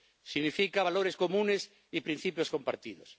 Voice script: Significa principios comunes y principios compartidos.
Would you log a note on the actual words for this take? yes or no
yes